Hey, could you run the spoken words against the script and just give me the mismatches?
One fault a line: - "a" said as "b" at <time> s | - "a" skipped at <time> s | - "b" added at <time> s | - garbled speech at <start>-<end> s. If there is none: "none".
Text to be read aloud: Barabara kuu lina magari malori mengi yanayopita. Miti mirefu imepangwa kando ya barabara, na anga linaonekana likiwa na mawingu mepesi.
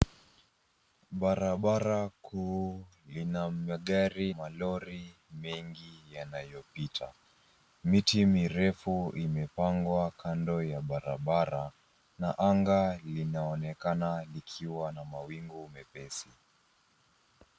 none